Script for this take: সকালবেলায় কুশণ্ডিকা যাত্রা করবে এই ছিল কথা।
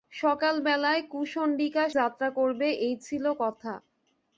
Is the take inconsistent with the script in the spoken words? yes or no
no